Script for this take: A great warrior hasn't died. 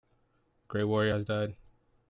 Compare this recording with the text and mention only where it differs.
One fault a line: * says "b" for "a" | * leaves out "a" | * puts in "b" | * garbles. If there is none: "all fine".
* says "has" for "hasn't"